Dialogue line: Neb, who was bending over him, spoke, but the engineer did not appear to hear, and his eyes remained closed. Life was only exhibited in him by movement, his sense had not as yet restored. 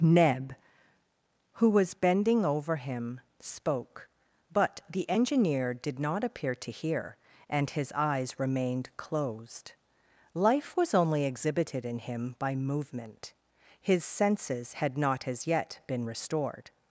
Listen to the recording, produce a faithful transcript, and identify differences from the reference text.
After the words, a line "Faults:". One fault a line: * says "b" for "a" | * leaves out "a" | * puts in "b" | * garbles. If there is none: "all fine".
Neb, who was bending over him, spoke, but the engineer did not appear to hear, and his eyes remained closed. Life was only exhibited in him by movement, his senses had not as yet been restored.
Faults:
* says "senses" for "sense"
* puts in "been"